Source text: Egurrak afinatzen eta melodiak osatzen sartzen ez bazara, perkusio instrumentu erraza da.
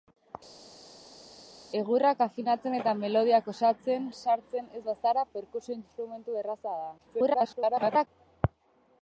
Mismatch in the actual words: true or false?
true